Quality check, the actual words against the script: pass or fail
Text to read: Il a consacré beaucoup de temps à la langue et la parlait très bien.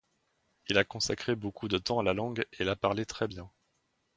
pass